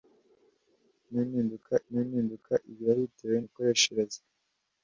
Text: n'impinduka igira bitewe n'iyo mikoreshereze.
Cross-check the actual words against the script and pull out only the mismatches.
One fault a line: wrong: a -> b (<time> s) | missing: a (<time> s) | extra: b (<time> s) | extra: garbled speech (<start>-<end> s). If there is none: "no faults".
extra: n'impinduka (1.9 s)
missing: n'iyo (3.4 s)